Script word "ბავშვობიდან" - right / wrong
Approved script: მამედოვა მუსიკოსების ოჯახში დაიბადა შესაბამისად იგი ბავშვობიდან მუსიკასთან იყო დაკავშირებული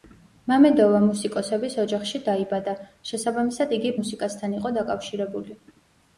wrong